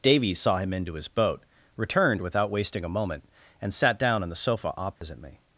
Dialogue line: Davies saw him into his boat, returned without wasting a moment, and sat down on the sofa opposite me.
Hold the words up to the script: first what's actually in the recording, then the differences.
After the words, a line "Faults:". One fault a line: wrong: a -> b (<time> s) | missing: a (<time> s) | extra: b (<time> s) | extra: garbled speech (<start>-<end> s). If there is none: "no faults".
Davies saw him into his boat, returned without wasting a moment, and sat down on the sofa opposite me.
Faults:
no faults